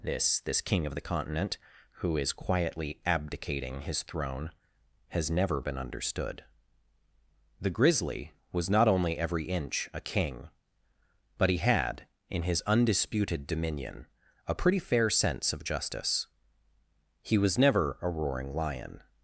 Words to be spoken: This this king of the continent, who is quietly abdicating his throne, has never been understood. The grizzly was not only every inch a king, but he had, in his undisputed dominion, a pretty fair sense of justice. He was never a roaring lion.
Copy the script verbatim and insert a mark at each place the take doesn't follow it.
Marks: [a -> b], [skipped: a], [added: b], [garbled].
This this king of the continent, who is quietly abdicating his throne, has never been understood. The grizzly was not only every inch a king, but he had, in his undisputed dominion, a pretty fair sense of justice. He was never a roaring lion.